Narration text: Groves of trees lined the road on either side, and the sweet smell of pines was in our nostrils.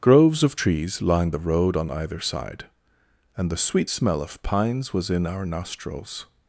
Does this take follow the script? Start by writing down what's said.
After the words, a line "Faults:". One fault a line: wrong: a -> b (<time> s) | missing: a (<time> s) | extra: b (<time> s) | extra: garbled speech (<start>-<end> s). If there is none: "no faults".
Groves of trees lined the road on either side, and the sweet smell of pines was in our nostrils.
Faults:
no faults